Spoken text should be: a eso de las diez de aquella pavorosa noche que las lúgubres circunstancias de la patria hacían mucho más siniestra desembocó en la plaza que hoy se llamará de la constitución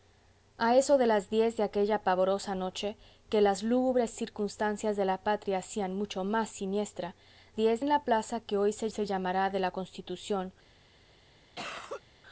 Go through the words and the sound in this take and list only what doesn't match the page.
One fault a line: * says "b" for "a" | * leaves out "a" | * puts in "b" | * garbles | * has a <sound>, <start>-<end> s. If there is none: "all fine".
* says "diez" for "desembocó"
* puts in "se"
* has a cough, 11.5-12.0 s